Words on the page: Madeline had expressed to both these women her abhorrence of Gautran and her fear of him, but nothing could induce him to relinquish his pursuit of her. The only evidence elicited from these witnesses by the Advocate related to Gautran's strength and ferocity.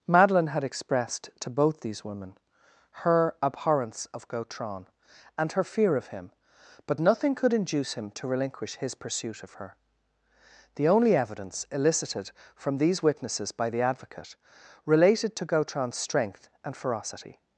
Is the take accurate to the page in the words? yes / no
yes